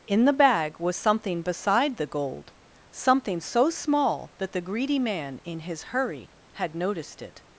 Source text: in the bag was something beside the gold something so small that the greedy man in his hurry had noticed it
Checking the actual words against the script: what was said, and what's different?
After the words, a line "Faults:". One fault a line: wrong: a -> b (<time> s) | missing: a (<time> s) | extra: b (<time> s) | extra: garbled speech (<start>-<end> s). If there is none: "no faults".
in the bag was something beside the gold something so small that the greedy man in his hurry had noticed it
Faults:
no faults